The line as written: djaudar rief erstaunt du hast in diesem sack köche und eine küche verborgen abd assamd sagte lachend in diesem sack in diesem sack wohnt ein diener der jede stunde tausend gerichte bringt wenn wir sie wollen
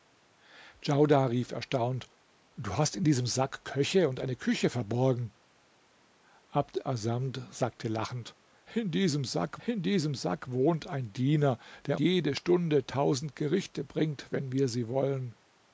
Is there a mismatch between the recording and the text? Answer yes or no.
no